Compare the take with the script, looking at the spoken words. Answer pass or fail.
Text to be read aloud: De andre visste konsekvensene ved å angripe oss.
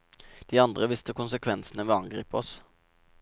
pass